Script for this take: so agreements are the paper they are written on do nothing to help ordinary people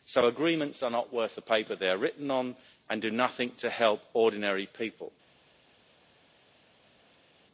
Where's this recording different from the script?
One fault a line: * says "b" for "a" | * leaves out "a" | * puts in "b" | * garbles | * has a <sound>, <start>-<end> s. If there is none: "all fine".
* puts in "not worth"
* puts in "and"